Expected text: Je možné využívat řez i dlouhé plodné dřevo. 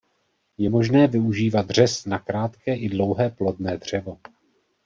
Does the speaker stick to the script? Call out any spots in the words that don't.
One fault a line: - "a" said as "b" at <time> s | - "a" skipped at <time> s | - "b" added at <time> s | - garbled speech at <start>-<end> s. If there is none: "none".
- "na krátké" added at 2.1 s